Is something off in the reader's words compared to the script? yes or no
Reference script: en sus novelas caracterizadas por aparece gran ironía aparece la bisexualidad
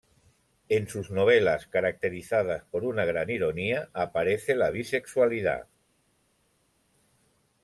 yes